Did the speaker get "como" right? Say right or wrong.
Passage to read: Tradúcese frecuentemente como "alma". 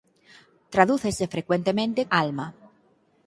wrong